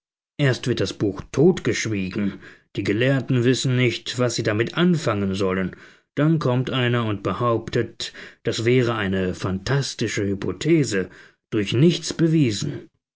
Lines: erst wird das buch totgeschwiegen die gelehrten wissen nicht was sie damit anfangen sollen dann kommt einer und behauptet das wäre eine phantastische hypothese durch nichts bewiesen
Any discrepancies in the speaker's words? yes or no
no